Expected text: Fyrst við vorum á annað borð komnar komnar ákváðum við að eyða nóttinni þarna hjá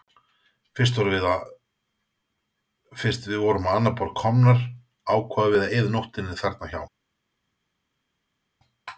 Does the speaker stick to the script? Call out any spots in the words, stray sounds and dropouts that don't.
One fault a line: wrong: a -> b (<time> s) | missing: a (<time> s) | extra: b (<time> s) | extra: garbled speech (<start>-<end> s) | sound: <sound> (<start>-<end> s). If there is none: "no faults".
missing: komnar (4.7 s)